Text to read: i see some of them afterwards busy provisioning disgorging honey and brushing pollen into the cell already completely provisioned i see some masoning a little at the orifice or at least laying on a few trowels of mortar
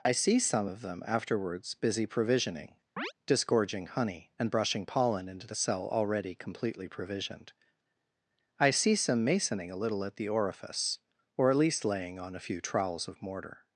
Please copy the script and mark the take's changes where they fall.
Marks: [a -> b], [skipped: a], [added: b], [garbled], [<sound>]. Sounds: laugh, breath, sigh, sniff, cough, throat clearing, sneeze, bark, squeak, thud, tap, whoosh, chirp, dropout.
i see some of them afterwards busy provisioning [chirp] disgorging honey and brushing pollen into the cell already completely provisioned i see some masoning a little at the orifice or at least laying on a few trowels of mortar